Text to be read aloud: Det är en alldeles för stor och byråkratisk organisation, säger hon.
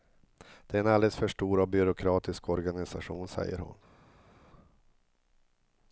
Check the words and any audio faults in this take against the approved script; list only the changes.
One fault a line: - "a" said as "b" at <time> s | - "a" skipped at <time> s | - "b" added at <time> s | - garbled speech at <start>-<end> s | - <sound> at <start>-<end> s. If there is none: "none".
none